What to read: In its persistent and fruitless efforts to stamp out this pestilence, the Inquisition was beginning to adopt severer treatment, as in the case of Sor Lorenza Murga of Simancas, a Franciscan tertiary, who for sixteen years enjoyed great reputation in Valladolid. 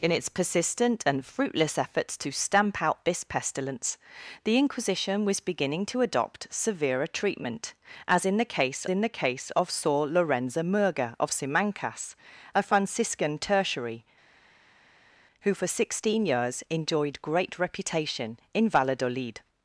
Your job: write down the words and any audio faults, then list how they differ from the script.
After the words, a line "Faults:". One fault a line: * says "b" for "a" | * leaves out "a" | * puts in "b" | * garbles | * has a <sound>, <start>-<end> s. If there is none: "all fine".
In its persistent and fruitless efforts to stamp out this pestilence, the Inquisition was beginning to adopt severer treatment, as in the case in the case of Sor Lorenza Murga of Simancas, a Franciscan tertiary, who for sixteen years enjoyed great reputation in Valladolid.
Faults:
* puts in "in the case"